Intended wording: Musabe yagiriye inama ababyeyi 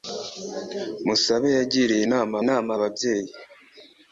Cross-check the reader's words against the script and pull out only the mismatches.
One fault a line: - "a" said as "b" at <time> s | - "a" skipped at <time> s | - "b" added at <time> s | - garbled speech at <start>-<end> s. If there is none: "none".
- "inama" added at 2.4 s